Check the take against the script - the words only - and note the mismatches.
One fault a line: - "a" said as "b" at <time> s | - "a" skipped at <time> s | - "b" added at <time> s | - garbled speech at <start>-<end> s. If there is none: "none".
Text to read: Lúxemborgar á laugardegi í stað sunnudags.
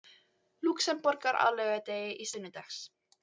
- "stað" skipped at 2.3 s